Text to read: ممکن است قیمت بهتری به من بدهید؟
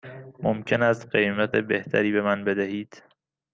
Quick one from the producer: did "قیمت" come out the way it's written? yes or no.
yes